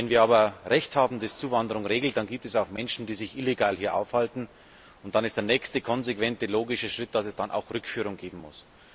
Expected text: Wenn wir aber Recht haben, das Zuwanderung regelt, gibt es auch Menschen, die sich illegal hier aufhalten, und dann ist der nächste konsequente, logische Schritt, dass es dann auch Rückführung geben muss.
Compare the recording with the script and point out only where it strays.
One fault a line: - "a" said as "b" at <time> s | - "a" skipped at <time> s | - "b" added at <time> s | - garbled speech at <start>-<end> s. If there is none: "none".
- "dann" added at 2.2 s